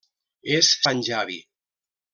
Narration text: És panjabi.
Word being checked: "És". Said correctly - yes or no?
yes